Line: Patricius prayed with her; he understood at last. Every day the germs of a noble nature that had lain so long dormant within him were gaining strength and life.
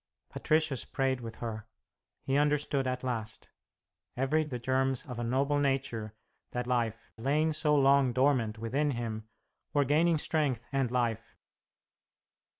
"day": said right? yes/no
no